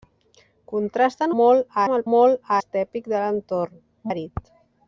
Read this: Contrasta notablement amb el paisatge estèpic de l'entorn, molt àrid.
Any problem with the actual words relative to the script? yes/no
yes